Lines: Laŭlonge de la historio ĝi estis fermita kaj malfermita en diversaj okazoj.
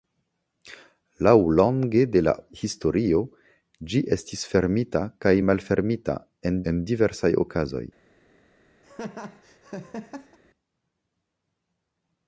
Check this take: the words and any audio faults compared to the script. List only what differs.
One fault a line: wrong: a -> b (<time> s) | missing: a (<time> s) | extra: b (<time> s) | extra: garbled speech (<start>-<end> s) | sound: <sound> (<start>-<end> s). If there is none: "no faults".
extra: en (6.7 s)
sound: laugh (8.8-10.4 s)